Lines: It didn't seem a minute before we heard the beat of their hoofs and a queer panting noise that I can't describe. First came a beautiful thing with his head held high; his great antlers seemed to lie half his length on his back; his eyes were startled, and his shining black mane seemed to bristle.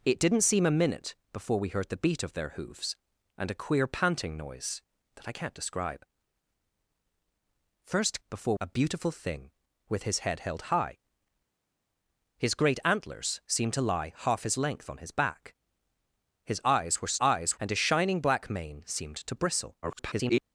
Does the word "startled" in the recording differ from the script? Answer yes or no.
yes